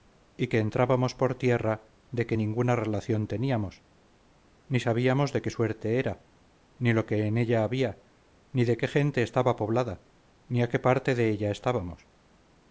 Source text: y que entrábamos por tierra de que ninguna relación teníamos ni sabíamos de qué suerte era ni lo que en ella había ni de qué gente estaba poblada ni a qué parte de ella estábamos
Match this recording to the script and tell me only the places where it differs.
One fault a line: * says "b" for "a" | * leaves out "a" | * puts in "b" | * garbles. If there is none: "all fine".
all fine